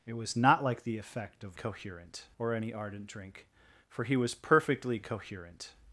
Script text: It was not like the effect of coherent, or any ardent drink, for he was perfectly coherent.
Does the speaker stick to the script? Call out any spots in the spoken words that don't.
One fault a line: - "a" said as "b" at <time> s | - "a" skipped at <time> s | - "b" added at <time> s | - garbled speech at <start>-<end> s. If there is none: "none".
none